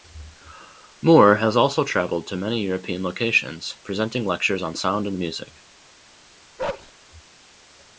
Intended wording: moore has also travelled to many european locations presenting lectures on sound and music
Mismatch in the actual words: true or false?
false